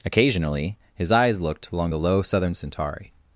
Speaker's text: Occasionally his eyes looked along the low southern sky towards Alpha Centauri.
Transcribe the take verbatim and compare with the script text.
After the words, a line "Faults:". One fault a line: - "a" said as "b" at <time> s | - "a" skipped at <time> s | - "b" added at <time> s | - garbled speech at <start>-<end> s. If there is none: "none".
Occasionally his eyes looked along the low southern Centauri.
Faults:
- "sky towards Alpha" skipped at 2.5 s